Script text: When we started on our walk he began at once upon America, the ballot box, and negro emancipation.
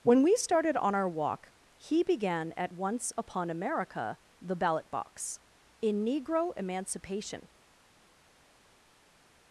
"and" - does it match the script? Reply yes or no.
no